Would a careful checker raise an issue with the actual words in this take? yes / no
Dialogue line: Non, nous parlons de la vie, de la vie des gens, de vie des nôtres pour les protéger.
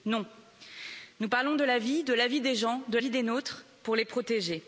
no